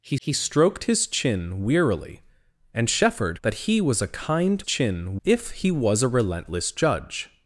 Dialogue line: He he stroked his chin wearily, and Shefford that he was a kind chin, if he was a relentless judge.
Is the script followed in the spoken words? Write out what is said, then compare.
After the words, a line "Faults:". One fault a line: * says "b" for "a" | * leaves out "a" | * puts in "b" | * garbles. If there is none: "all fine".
He he stroked his chin wearily, and Shefford that he was a kind chin, if he was a relentless judge.
Faults:
all fine